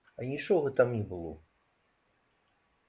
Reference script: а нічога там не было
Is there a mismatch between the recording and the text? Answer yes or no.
no